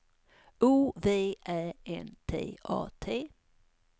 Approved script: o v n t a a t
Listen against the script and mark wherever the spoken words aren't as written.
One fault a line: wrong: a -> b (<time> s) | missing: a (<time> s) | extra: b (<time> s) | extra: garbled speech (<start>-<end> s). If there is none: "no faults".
extra: ä (1.5 s)
missing: a (2.9 s)